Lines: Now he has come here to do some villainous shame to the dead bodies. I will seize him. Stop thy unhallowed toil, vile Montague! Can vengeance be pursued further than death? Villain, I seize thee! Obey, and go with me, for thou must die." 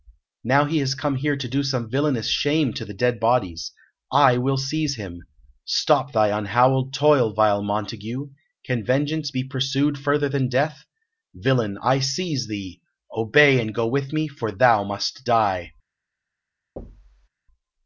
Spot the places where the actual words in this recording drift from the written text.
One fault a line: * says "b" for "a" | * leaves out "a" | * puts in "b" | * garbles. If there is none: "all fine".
all fine